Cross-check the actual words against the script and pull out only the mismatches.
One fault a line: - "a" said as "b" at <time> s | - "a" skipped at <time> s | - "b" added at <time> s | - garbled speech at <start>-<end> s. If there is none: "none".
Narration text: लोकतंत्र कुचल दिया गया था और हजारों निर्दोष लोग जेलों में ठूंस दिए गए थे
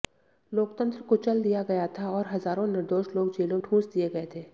- "में" skipped at 3.6 s